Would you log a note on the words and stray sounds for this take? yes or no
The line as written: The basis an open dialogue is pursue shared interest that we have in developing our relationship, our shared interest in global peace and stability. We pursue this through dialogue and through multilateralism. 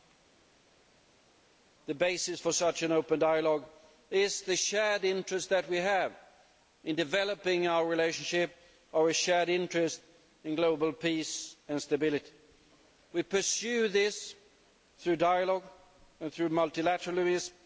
yes